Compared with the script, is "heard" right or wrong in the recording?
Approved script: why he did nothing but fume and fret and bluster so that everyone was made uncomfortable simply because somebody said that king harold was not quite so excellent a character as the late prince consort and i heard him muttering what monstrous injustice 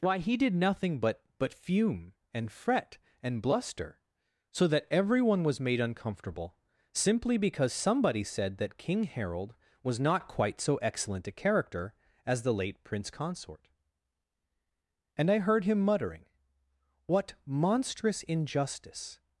right